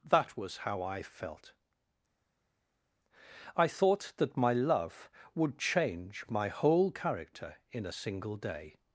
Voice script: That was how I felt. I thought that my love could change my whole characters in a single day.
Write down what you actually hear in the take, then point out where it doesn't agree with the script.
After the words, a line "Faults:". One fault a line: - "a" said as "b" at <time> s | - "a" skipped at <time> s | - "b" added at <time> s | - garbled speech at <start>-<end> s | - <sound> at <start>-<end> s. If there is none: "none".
That was how I felt. I thought that my love would change my whole character in a single day.
Faults:
- "could" said as "would" at 5.3 s
- "characters" said as "character" at 6.9 s